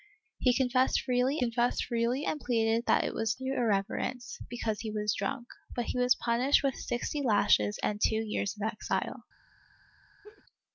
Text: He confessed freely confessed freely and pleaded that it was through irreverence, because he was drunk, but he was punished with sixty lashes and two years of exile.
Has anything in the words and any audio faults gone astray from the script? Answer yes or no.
yes